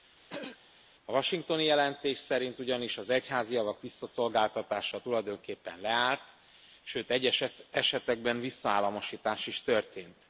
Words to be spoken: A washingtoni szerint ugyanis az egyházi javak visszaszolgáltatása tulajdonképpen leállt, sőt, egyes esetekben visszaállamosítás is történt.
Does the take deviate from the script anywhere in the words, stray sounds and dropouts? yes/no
yes